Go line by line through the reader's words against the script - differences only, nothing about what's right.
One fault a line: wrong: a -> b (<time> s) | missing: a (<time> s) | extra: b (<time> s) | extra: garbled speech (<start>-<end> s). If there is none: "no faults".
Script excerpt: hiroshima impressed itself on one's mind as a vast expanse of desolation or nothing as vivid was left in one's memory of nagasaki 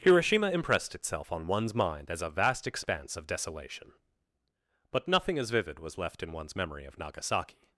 wrong: or -> but (4.9 s)